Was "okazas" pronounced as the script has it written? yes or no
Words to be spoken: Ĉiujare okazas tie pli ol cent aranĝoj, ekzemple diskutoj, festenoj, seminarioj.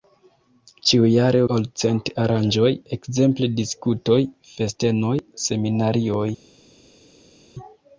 no